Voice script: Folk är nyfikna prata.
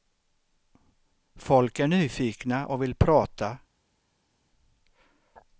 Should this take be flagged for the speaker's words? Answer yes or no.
yes